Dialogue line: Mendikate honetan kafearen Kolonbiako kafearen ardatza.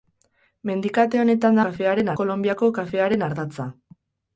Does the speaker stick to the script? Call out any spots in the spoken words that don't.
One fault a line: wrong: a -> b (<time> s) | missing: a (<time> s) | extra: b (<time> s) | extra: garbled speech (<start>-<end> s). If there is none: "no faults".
no faults